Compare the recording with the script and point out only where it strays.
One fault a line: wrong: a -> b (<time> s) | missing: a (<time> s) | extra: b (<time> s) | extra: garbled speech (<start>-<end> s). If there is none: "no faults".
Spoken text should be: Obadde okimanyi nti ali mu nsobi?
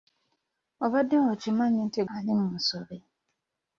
no faults